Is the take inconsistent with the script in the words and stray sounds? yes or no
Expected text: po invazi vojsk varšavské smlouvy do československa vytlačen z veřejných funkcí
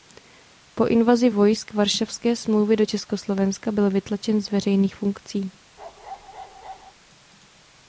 yes